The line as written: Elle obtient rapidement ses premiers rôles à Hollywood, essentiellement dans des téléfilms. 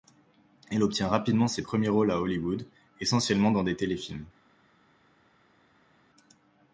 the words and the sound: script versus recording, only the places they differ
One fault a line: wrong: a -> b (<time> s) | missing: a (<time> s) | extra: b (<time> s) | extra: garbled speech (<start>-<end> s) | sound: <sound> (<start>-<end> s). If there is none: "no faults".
no faults